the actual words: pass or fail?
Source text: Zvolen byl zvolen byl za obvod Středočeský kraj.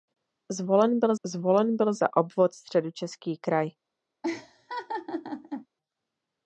pass